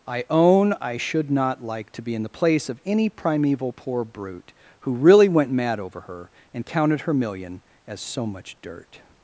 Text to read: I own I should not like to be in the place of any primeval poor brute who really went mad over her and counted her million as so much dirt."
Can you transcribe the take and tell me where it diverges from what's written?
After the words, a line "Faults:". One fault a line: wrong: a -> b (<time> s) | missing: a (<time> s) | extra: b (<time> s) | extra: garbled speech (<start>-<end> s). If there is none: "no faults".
I own I should not like to be in the place of any primeval poor brute who really went mad over her and counted her million as so much dirt."
Faults:
no faults